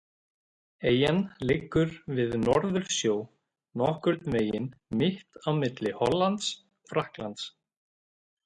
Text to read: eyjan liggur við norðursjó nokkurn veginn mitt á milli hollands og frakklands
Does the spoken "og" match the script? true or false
false